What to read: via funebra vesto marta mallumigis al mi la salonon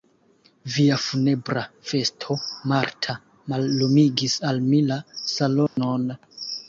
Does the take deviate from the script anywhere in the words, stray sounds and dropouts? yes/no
yes